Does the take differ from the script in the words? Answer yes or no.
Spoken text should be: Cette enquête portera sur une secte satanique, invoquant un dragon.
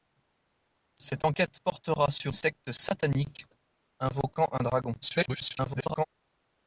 yes